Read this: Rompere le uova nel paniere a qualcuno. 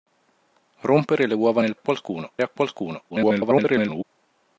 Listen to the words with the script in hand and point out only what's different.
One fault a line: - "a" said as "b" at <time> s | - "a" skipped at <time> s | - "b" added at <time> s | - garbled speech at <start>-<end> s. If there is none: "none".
- "paniere" said as "qualcuno" at 1.8 s
- garbled speech at 3.1-4.0 s